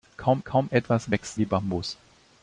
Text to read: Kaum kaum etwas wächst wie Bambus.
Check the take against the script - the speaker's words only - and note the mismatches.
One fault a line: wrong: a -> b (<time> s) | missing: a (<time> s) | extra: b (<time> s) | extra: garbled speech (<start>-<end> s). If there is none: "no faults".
no faults